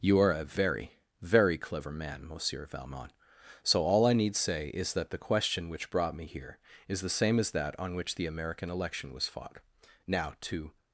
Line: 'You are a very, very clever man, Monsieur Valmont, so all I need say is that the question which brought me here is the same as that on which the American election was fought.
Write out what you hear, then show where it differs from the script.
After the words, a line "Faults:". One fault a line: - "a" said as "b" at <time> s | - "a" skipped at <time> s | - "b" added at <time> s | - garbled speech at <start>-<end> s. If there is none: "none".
'You are a very, very clever man, Monsieur Valmont, so all I need say is that the question which brought me here is the same as that on which the American election was fought. Now, to
Faults:
- "Now to" added at 10.1 s